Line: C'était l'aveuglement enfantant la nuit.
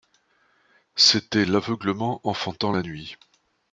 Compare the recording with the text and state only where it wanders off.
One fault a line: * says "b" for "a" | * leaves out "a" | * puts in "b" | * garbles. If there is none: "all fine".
all fine